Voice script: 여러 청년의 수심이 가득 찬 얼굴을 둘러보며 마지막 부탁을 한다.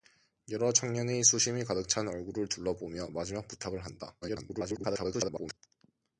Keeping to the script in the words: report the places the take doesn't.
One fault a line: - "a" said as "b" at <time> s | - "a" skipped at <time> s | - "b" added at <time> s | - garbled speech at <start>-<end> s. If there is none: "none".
- garbled speech at 4.2-5.6 s